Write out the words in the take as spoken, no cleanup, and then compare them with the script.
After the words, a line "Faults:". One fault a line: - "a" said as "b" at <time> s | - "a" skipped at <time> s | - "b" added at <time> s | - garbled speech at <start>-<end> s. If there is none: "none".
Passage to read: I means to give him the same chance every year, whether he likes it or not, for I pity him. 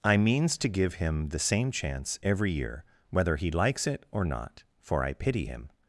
I means to give him the same chance every year, whether he likes it or not, for I pity him.
Faults:
none